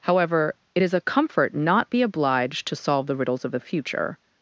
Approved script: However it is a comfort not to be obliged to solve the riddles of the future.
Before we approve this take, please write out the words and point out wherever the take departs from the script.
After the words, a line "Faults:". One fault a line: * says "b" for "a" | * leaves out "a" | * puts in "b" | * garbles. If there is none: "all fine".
However it is a comfort not be obliged to solve the riddles of the future.
Faults:
* leaves out "to"